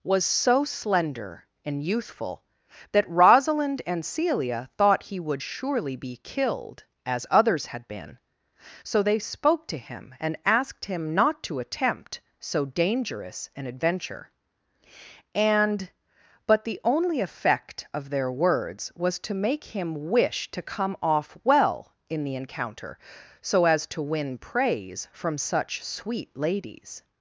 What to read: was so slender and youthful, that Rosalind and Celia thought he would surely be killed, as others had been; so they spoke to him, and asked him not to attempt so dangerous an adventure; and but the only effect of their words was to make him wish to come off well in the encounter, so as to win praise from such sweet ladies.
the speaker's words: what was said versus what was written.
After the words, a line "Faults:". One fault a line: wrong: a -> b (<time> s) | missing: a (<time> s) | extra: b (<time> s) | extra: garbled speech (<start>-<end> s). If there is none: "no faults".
was so slender and youthful, that Rosalind and Celia thought he would surely be killed, as others had been; so they spoke to him, and asked him not to attempt so dangerous an adventure; and but the only effect of their words was to make him wish to come off well in the encounter, so as to win praise from such sweet ladies.
Faults:
no faults